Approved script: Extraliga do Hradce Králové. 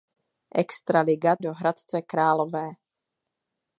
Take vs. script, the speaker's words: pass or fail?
pass